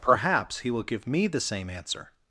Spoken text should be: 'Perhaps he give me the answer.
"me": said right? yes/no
yes